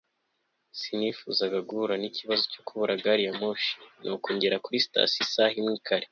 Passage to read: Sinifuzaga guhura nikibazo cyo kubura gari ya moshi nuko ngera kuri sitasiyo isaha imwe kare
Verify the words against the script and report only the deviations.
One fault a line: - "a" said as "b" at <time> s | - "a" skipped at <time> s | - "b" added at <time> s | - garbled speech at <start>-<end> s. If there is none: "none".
none